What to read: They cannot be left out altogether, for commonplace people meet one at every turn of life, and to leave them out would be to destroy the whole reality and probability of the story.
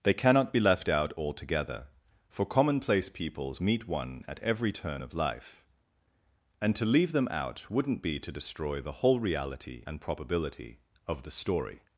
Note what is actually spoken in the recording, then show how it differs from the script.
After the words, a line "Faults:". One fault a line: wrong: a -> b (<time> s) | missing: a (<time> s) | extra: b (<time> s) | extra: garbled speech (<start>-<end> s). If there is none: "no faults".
They cannot be left out altogether, for commonplace peoples meet one at every turn of life, and to leave them out wouldn't be to destroy the whole reality and probability of the story.
Faults:
wrong: people -> peoples (3.1 s)
wrong: would -> wouldn't (7.7 s)